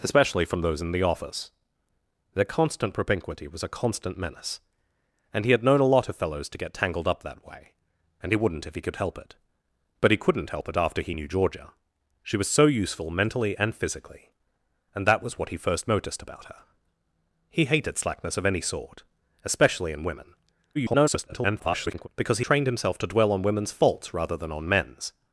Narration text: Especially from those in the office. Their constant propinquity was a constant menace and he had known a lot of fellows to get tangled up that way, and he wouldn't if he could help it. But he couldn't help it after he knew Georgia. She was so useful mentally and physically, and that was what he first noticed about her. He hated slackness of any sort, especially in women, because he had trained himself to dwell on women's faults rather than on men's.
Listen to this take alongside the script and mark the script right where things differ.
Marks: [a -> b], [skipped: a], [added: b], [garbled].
Especially from those in the office. Their constant propinquity was a constant menace and he had known a lot of fellows to get tangled up that way, and he wouldn't if he could help it. But he couldn't help it after he knew Georgia. She was so useful mentally and physically, and that was what he first noticed about her. He hated slackness of any sort, especially in women, [garbled] because he [skipped: had] trained himself to dwell on women's faults rather than on men's.